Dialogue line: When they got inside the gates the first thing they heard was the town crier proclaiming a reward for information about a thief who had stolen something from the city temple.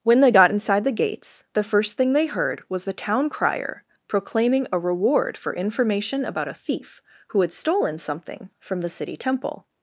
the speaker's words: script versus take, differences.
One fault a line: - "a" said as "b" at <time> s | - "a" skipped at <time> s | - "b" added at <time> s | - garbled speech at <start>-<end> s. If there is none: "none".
none